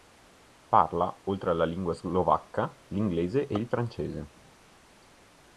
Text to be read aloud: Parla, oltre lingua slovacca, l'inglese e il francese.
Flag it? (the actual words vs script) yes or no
yes